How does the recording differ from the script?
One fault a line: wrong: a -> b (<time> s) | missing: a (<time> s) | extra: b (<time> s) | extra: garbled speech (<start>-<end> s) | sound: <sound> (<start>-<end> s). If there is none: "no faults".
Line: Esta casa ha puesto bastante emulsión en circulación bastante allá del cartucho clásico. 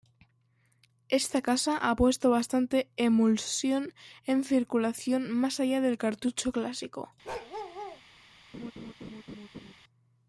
wrong: bastante -> más (5.3 s)
sound: bark (7.2-8.0 s)
sound: laugh (8.5-9.7 s)